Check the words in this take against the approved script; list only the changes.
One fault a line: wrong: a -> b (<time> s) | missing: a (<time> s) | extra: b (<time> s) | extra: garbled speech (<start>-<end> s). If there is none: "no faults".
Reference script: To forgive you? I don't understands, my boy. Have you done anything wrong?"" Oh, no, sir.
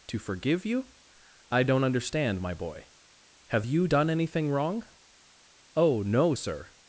wrong: understands -> understand (1.8 s)